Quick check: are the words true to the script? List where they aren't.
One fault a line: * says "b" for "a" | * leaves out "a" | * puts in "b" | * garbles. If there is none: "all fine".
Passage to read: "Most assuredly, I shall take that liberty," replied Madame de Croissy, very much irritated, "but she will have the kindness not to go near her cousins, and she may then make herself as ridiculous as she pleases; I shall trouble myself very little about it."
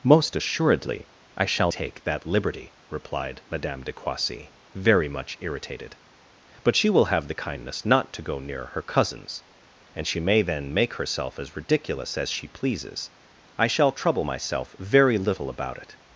all fine